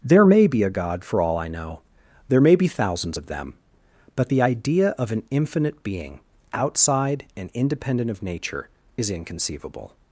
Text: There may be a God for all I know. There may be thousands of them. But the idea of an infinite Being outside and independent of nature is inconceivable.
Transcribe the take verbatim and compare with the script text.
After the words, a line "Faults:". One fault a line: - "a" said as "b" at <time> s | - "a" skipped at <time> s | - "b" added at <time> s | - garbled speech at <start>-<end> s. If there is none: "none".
There may be a God for all I know. There may be thousands of them. But the idea of an infinite Being outside and independent of nature is inconceivable.
Faults:
none